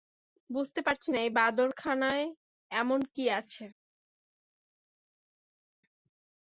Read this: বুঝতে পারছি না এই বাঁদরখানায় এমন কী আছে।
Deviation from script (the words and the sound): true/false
false